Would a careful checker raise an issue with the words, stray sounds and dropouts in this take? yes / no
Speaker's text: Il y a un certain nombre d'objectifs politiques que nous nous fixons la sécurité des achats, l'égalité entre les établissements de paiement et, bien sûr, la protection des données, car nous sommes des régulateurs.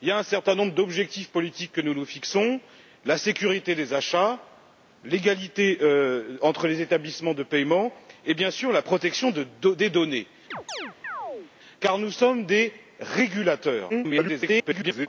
yes